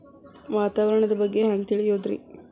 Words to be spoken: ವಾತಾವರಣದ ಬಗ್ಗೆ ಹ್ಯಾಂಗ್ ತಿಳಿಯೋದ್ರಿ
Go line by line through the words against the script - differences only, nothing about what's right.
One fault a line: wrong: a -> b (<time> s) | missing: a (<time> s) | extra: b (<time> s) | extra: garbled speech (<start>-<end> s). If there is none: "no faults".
no faults